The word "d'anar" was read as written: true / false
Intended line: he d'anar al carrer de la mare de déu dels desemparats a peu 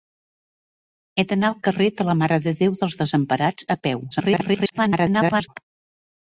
true